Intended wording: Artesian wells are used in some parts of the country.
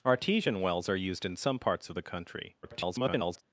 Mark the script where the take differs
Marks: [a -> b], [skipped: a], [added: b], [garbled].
Artesian wells are used in some parts of the country. [garbled]